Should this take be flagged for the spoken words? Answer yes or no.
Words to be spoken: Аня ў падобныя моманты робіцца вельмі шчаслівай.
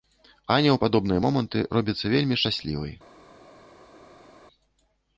no